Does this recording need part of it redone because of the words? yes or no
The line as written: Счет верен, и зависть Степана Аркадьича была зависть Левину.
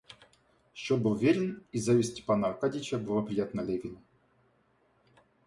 yes